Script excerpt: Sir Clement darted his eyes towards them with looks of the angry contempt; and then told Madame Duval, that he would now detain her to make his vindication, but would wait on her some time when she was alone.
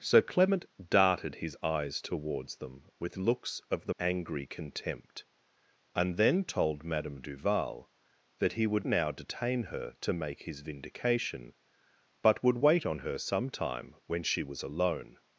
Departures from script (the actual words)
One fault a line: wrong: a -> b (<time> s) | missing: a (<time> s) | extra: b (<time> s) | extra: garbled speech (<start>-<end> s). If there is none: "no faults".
no faults